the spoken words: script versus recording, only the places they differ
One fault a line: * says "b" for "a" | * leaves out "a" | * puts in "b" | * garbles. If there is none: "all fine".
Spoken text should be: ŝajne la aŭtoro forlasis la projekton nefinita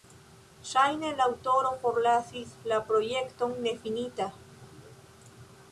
all fine